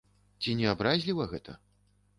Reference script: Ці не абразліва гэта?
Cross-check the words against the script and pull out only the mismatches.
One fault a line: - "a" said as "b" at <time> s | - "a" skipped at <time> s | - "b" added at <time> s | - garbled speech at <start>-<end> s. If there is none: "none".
none